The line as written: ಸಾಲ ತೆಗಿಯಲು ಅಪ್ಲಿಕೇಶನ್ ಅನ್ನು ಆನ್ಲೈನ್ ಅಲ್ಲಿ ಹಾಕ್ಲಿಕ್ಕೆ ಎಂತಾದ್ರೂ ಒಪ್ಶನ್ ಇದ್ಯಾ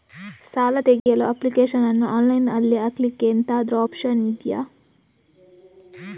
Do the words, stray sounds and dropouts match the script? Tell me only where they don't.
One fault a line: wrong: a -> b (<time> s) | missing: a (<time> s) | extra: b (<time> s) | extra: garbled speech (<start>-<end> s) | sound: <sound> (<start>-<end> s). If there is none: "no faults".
sound: dropout (1.0-1.1 s)